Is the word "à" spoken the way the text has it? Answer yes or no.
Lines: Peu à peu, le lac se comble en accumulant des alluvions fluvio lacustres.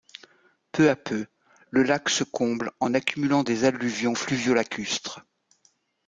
yes